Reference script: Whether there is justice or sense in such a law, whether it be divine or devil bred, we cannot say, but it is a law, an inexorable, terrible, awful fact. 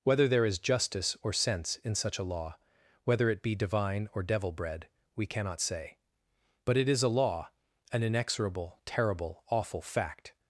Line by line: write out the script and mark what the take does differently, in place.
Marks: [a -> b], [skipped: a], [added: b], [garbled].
Whether there is justice or sense in such a law, whether it be divine or devil bred, we cannot say, but it is a law, an inexorable, terrible, awful fact.